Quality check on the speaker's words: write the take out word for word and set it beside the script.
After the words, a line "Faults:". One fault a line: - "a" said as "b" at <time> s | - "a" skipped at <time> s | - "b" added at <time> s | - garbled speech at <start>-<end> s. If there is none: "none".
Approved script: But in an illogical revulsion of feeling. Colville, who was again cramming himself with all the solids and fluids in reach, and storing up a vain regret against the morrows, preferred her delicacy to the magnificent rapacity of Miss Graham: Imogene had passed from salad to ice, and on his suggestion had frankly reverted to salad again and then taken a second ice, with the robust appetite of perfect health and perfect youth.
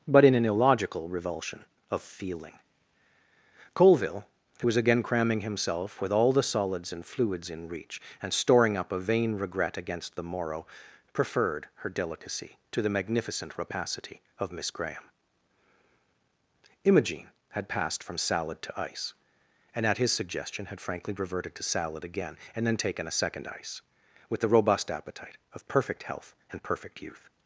But in an illogical revulsion of feeling. Colville, who was again cramming himself with all the solids and fluids in reach, and storing up a vain regret against the morrow, preferred her delicacy to the magnificent rapacity of Miss Graham: Imogene had passed from salad to ice, and at his suggestion had frankly reverted to salad again and then taken a second ice, with the robust appetite of perfect health and perfect youth.
Faults:
- "morrows" said as "morrow" at 10.2 s
- "on" said as "at" at 19.8 s